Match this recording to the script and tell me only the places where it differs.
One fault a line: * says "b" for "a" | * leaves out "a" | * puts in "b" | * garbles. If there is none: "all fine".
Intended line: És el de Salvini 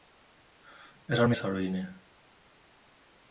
all fine